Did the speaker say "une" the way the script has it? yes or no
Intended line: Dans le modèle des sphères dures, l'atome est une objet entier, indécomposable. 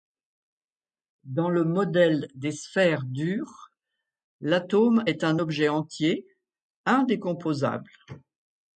no